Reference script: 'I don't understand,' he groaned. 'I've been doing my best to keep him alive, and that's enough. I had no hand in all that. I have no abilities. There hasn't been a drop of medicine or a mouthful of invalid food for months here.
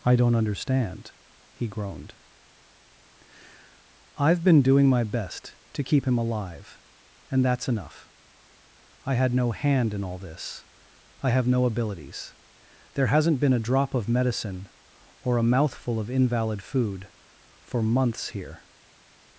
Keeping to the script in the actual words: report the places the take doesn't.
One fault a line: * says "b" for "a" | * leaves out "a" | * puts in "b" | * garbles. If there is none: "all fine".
* says "this" for "that"